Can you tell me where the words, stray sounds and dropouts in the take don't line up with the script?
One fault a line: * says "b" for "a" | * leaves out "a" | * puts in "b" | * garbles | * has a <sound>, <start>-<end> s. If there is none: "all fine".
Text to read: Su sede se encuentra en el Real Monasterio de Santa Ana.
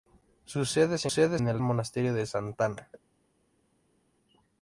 * says "sede" for "encuentra"
* leaves out "Real"